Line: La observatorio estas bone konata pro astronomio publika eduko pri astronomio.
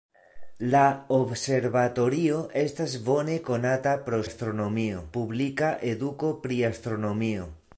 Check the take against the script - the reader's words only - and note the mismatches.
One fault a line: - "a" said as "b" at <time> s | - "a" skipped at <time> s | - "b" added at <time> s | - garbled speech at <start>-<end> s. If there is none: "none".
none